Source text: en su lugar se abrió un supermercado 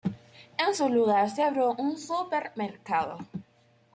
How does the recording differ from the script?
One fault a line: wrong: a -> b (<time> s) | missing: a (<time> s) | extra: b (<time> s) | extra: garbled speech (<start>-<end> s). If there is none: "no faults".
no faults